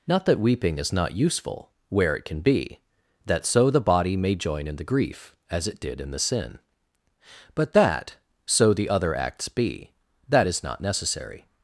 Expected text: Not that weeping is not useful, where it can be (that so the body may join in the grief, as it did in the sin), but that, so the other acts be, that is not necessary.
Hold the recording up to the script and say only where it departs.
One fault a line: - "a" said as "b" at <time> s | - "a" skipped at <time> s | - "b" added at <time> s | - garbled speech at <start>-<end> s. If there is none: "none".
none